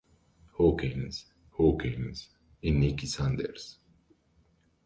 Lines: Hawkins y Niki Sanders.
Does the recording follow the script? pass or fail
fail